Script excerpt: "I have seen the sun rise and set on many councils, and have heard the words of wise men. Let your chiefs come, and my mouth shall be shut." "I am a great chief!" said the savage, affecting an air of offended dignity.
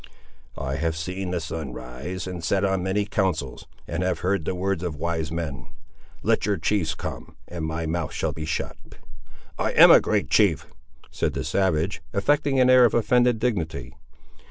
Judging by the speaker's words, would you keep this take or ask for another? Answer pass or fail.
pass